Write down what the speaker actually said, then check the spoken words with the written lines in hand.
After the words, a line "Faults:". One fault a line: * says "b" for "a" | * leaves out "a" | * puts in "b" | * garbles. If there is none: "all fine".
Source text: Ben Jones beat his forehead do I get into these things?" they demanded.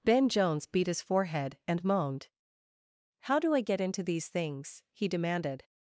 Ben Jones beat his forehead and moaned. "How do I get into these things?" he demanded.
Faults:
* puts in "and moaned How"
* says "he" for "they"